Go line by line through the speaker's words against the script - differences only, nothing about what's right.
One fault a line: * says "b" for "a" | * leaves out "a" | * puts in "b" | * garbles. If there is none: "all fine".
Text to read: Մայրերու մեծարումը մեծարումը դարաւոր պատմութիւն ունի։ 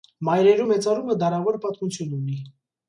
* leaves out "մեծարումը"